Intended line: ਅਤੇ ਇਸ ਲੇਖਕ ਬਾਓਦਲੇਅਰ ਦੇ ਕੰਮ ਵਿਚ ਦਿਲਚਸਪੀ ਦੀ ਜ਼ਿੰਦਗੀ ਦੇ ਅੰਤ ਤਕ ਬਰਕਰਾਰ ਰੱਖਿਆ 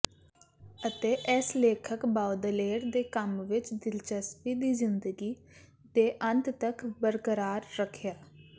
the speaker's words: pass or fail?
pass